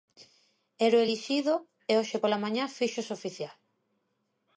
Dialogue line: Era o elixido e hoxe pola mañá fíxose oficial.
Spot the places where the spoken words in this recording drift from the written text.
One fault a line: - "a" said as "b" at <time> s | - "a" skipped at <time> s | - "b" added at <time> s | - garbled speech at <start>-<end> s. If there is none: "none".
none